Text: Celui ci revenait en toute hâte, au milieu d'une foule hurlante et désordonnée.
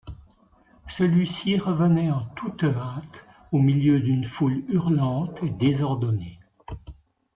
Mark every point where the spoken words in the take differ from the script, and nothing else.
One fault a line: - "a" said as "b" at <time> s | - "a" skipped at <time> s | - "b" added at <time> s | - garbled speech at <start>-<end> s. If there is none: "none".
none